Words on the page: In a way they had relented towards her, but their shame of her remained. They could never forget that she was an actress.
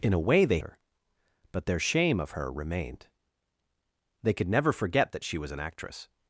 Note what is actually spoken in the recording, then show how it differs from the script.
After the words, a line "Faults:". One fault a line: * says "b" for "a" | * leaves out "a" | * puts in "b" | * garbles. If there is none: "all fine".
In a way they her, but their shame of her remained. They could never forget that she was an actress.
Faults:
* leaves out "had relented towards"